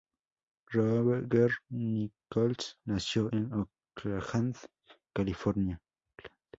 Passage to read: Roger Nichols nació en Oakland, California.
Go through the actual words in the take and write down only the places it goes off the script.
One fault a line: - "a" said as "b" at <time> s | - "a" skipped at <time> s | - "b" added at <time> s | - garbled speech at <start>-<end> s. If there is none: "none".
none